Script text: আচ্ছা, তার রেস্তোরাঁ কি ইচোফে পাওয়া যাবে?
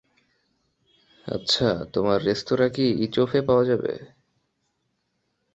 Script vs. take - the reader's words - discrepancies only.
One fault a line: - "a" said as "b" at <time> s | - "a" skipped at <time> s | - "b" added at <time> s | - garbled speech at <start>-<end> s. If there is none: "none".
- "তার" said as "তোমার" at 1.9 s